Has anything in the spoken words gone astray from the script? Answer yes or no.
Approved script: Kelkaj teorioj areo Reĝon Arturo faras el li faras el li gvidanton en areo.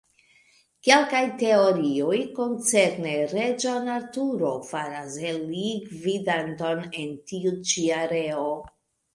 yes